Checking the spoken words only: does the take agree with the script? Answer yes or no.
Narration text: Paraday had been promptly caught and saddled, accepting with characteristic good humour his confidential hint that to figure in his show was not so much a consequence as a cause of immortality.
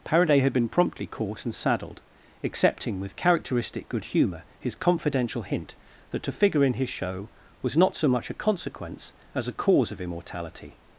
yes